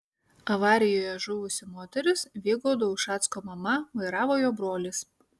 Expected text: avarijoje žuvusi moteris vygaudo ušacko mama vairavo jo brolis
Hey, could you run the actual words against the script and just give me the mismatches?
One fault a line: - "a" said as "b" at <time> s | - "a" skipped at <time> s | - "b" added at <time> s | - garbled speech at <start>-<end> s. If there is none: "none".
none